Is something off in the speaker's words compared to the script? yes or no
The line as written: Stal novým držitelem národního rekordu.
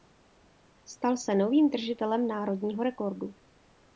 yes